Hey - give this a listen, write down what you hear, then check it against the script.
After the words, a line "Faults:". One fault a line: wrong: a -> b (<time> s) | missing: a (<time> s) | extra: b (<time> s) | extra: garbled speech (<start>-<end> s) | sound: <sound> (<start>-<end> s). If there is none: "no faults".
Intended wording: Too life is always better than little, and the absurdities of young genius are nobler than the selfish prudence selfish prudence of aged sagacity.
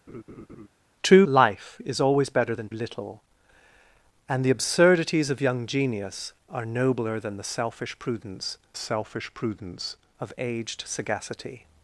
Too life is always better than little, and the absurdities of young genius are nobler than the selfish prudence selfish prudence of aged sagacity.
Faults:
sound: laugh (0.1-0.7 s)